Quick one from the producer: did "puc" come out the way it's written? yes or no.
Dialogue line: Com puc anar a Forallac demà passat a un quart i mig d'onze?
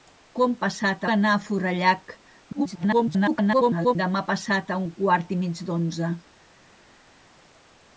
no